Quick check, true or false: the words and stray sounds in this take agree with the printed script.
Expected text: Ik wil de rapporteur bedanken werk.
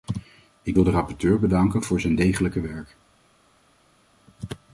false